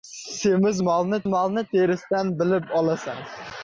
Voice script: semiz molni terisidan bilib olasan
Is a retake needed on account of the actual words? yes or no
yes